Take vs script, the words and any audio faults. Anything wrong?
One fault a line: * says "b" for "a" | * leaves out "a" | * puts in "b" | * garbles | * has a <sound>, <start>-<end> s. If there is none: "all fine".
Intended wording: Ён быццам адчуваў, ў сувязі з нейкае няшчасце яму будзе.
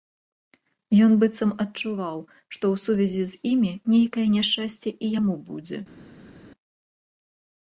* puts in "што"
* puts in "імі"
* puts in "і"